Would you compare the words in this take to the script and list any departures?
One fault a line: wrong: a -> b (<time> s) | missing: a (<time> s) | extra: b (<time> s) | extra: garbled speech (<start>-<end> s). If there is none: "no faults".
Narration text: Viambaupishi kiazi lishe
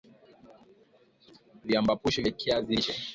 extra: vya (2.2 s)